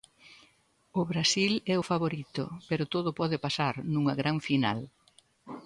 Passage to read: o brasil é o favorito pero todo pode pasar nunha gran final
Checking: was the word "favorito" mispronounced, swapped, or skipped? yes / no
no